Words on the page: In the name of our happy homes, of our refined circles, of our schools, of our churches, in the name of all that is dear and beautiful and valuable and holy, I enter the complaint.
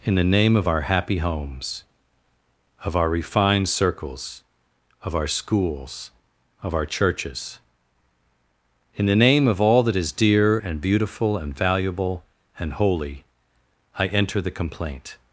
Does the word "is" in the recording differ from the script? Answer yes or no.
no